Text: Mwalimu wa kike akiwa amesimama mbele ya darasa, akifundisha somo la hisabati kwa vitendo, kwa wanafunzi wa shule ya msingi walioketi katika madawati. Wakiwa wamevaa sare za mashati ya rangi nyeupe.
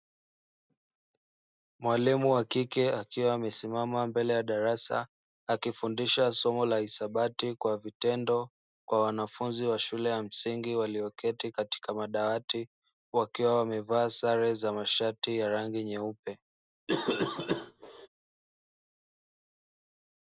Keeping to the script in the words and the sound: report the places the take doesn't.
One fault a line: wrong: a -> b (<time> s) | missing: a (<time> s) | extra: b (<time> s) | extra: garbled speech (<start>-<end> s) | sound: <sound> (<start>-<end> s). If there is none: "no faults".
sound: cough (16.9-18.1 s)